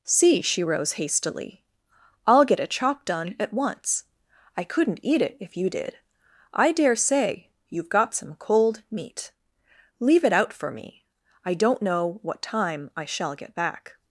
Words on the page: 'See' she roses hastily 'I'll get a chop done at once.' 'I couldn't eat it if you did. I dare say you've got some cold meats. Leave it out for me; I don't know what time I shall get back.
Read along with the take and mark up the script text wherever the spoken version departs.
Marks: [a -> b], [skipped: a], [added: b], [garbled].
'See' she [roses -> rose] hastily 'I'll get a chop done at once.' 'I couldn't eat it if you did. I dare say you've got some cold [meats. -> meat] Leave it out for me; I don't know what time I shall get back.